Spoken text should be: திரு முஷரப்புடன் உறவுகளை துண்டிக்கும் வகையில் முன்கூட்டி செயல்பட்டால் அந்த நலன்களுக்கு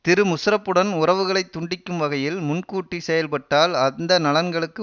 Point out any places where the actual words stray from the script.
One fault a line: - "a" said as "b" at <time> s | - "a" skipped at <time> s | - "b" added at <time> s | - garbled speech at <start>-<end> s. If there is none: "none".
none